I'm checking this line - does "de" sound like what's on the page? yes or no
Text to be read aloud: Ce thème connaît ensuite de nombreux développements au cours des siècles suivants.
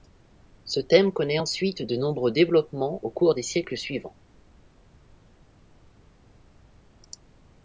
yes